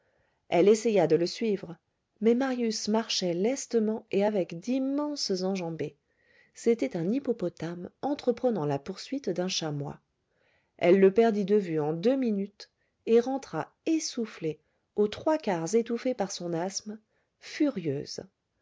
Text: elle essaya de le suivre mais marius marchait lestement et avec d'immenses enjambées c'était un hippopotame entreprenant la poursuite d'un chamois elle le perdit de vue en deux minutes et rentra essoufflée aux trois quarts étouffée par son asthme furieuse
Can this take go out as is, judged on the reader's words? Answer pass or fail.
pass